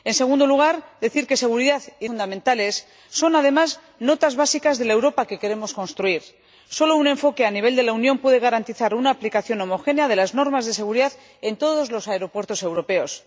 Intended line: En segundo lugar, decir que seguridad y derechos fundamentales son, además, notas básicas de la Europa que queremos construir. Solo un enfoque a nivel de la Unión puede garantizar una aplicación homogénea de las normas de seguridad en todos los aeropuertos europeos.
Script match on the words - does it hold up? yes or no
no